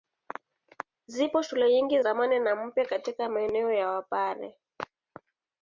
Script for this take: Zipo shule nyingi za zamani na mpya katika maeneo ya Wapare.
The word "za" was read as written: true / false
false